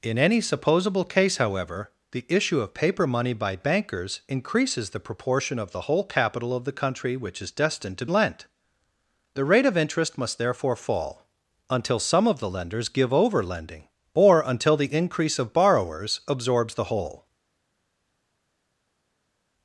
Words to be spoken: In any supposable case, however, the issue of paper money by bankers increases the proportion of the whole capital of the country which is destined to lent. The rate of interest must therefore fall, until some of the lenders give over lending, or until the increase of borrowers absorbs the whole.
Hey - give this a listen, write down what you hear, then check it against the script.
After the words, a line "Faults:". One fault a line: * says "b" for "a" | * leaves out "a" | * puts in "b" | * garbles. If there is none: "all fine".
In any supposable case, however, the issue of paper money by bankers increases the proportion of the whole capital of the country which is destined to lent. The rate of interest must therefore fall, until some of the lenders give over lending, or until the increase of borrowers absorbs the whole.
Faults:
all fine